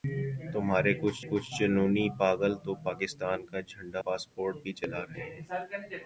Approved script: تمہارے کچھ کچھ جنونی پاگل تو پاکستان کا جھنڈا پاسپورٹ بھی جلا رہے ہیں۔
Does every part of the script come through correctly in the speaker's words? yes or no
yes